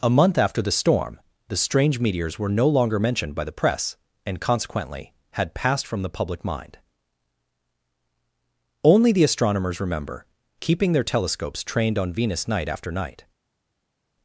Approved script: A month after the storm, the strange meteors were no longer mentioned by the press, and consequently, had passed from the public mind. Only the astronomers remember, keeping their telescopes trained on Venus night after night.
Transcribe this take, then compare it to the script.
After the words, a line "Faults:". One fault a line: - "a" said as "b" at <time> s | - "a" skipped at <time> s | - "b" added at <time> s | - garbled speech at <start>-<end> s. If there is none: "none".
A month after the storm, the strange meteors were no longer mentioned by the press, and consequently, had passed from the public mind. Only the astronomers remember, keeping their telescopes trained on Venus night after night.
Faults:
none